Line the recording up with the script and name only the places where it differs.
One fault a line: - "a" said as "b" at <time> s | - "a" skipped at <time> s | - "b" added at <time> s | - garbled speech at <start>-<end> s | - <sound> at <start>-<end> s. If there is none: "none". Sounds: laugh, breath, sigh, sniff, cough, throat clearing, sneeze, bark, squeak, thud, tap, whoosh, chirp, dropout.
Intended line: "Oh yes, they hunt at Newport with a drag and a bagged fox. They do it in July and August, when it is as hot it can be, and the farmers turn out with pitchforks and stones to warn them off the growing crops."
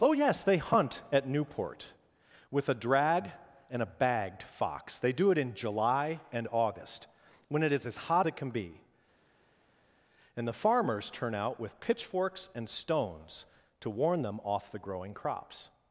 none